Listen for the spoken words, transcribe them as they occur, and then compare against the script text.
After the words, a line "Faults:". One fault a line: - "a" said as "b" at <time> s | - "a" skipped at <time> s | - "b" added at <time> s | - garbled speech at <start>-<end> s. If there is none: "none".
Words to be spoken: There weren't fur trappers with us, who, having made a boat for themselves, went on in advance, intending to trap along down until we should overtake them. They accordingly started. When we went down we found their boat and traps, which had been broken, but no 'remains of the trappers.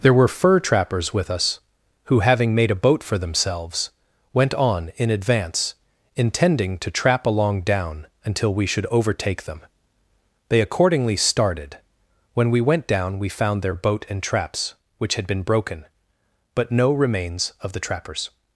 There were fur trappers with us, who, having made a boat for themselves, went on in advance, intending to trap along down until we should overtake them. They accordingly started. When we went down we found their boat and traps, which had been broken, but no 'remains of the trappers.
Faults:
- "weren't" said as "were" at 0.1 s